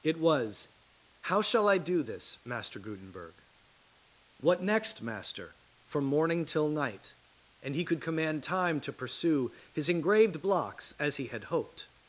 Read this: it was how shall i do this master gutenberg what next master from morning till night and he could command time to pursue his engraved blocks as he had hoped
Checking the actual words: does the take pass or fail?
pass